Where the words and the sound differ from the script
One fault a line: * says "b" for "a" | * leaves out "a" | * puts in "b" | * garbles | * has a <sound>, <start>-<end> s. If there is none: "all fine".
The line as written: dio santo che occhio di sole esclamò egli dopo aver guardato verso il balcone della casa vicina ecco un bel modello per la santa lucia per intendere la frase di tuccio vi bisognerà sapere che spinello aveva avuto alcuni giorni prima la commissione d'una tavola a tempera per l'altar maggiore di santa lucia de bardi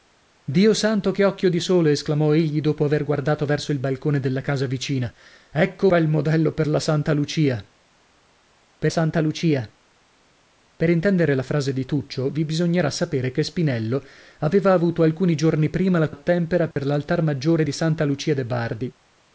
* leaves out "un"
* puts in "santa lucia per"
* leaves out "commissione d'una tavola"
* has a dropout, 16.7-16.8 s